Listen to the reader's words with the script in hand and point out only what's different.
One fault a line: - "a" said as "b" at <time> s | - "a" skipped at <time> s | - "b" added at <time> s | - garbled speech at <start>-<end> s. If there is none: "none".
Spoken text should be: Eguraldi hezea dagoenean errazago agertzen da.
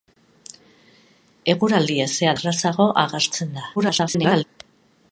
- "dagoenean" skipped at 2.3 s
- garbled speech at 3.8-4.4 s